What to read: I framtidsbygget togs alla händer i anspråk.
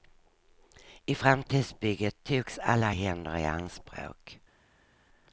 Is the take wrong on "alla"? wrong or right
right